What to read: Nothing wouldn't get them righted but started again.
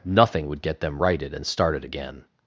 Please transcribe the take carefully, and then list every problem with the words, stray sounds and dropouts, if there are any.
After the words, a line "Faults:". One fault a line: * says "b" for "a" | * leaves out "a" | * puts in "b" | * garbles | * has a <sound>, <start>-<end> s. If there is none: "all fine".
Nothing would get them righted and started again.
Faults:
* says "would" for "wouldn't"
* says "and" for "but"